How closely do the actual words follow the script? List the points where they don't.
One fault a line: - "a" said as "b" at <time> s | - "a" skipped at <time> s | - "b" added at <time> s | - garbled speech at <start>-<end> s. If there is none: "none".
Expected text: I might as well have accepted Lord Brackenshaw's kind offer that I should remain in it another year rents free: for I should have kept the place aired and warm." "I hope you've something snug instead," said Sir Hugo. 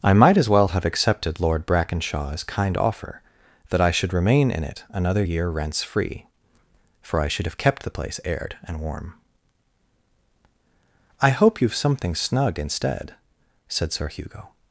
none